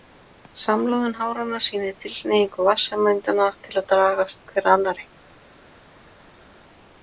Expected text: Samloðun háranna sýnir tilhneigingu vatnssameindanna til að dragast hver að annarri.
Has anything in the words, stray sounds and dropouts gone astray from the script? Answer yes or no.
no